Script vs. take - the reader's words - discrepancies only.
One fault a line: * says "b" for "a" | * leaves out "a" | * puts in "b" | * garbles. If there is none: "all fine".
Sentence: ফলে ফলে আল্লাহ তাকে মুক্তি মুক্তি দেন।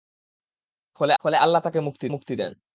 all fine